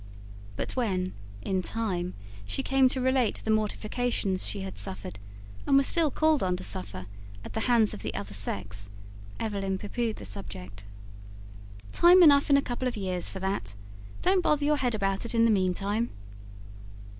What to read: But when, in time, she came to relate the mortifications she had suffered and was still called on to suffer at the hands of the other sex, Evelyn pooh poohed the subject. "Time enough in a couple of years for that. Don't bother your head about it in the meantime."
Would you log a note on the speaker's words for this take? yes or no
no